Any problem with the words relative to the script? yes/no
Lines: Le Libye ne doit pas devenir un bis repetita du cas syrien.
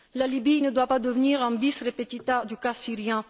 yes